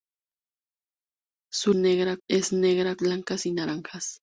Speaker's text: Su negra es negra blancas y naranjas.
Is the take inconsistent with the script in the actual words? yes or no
no